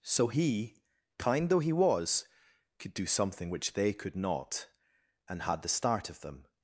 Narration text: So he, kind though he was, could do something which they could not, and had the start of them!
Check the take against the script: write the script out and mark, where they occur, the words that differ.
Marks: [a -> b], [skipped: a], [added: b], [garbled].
So he, kind though he was, could do something which they could not, and had the start of them!